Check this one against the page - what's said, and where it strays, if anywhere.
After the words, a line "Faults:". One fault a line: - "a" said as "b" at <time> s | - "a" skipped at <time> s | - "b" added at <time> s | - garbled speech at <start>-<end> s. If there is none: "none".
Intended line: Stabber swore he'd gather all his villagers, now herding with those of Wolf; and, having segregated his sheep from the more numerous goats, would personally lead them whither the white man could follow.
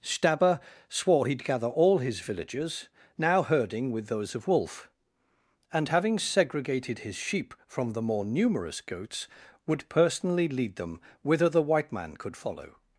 Stabber swore he'd gather all his villagers, now herding with those of Wolf; and, having segregated his sheep from the more numerous goats, would personally lead them whither the white man could follow.
Faults:
none